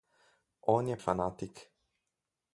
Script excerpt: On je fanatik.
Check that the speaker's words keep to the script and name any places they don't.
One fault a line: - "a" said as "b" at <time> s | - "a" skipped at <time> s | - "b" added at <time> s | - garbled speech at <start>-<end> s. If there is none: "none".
none